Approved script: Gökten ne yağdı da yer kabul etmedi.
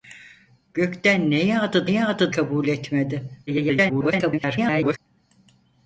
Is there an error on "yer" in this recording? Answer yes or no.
yes